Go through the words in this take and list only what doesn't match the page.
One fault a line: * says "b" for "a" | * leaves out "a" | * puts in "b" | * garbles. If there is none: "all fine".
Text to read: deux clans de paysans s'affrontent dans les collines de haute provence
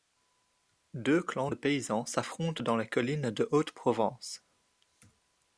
all fine